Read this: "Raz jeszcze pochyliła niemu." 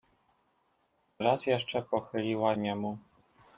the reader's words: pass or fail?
pass